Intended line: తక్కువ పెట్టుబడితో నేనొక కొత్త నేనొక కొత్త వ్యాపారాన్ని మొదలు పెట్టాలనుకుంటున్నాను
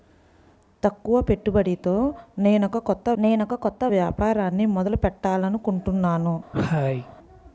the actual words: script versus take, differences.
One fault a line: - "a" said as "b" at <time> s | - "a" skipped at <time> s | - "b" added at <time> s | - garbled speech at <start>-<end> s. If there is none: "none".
none